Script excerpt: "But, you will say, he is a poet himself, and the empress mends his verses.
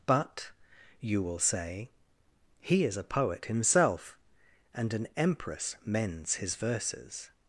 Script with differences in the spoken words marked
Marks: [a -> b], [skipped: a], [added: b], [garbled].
"But, you will say, he is a poet himself, and [the -> an] empress mends his verses.